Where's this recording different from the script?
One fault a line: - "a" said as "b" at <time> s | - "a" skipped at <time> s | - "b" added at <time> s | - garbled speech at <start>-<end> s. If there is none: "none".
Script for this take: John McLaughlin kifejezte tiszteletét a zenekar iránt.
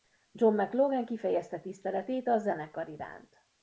none